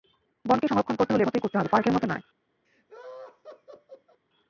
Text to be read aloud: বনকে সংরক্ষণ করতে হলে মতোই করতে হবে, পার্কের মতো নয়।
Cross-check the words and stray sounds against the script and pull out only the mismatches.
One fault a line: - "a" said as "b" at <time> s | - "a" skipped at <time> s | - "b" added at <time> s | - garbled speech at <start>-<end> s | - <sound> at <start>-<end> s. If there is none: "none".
- laugh at 2.6-4.2 s